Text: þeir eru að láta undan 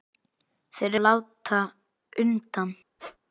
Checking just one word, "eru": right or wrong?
wrong